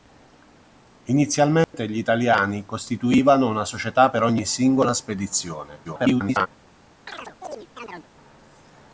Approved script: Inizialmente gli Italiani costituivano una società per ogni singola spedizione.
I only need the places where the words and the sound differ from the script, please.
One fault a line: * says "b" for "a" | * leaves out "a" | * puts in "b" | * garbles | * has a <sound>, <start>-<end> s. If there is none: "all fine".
* has a dropout, 1.6-1.7 s
* garbles
* has a chirp, 7.1-8.1 s